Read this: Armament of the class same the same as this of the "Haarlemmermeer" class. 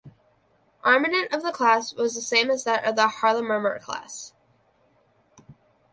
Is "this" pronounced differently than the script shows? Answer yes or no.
yes